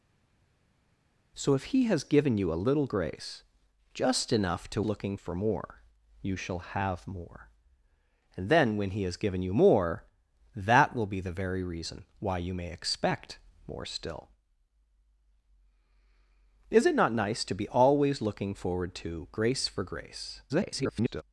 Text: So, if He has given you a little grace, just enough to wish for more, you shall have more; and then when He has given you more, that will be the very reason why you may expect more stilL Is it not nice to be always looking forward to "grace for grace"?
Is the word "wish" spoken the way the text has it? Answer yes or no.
no